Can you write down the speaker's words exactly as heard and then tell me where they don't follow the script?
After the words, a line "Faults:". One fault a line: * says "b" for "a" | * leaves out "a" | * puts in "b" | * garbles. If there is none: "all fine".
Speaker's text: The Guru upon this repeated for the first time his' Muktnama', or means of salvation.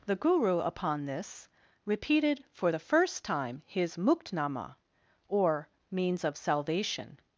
The Guru upon this repeated for the first time his' Muktnama', or means of salvation.
Faults:
all fine